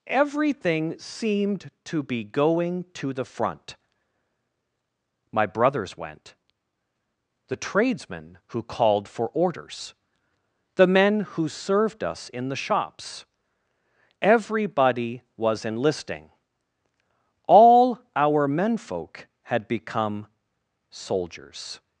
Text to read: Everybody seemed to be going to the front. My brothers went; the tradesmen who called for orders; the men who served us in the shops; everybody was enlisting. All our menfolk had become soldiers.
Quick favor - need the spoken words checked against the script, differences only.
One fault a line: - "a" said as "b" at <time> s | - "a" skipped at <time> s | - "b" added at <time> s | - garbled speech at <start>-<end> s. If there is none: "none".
- "Everybody" said as "Everything" at 0.1 s